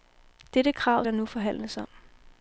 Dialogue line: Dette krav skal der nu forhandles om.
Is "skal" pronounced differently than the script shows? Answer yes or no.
yes